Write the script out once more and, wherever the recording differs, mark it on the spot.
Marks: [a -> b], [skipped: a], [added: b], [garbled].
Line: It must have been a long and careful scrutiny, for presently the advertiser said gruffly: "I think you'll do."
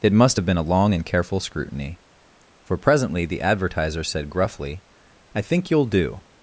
It must have been a long and careful scrutiny, for presently the advertiser said gruffly: "I think you'll do."